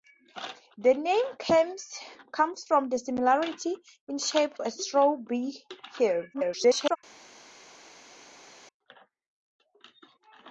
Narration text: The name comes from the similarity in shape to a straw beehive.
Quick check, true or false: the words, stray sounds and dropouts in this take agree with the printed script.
false